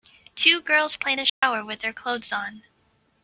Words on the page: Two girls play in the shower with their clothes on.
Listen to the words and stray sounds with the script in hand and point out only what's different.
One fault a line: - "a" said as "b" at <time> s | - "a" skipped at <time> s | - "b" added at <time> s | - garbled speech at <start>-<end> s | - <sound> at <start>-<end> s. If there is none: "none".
- dropout at 1.3-1.4 s